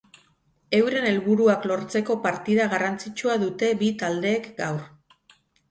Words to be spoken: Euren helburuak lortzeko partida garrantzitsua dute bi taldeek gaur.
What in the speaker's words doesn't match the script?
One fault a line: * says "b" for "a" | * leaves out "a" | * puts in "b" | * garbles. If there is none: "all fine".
all fine